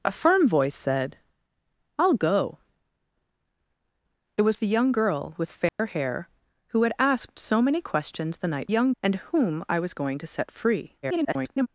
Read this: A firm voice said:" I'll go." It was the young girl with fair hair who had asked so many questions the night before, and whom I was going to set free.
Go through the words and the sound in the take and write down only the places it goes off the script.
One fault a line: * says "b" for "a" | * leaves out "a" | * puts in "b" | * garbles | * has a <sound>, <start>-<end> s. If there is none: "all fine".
* has a dropout, 5.7-5.8 s
* says "young" for "before"
* garbles